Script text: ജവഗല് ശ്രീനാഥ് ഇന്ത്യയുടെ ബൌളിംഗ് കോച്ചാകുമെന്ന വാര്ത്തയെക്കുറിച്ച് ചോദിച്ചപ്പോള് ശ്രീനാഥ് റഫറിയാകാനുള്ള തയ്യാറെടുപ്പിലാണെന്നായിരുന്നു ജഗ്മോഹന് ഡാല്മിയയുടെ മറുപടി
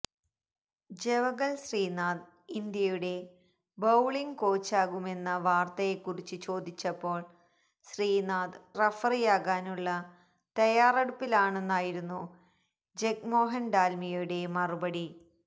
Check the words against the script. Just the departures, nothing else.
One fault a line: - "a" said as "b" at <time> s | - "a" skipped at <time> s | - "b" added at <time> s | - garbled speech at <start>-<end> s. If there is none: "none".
none